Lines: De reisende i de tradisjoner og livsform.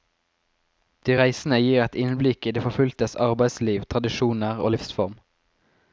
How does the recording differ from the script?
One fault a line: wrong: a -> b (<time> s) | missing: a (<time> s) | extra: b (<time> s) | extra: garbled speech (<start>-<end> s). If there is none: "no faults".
extra: gir et innblikk (1.6 s)
extra: forfulgtes arbeidsliv (2.7 s)